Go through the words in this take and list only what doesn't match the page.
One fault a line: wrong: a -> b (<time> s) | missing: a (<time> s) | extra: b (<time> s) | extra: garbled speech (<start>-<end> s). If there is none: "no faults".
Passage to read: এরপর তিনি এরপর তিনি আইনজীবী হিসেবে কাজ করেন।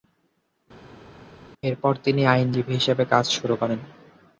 missing: এরপর তিনি (2.2 s)
extra: শুরু (3.3 s)